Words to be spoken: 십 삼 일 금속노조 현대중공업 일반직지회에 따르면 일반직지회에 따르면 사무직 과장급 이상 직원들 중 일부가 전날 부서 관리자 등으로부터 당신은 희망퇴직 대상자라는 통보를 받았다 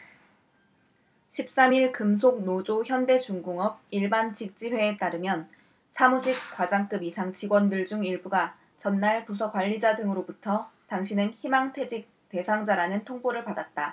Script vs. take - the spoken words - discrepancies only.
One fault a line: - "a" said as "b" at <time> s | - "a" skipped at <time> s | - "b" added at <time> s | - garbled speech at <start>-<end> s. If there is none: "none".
- "일반직지회에 따르면" skipped at 5.5 s